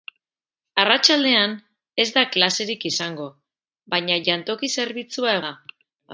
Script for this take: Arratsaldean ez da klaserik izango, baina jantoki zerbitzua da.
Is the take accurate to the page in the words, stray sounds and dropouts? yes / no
yes